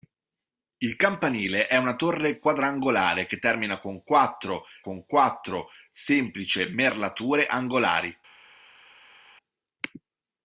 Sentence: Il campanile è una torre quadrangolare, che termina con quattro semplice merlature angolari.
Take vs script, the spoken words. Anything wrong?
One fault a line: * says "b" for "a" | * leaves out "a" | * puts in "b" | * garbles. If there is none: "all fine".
* puts in "con quattro"